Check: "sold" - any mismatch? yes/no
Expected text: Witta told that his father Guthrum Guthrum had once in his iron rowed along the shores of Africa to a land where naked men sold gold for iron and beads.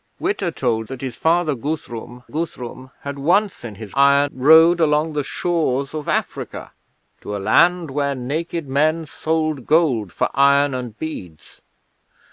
no